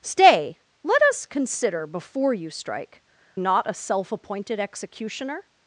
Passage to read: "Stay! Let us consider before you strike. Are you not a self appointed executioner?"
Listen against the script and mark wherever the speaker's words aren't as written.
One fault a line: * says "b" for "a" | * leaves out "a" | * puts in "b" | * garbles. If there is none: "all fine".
* leaves out "Are you"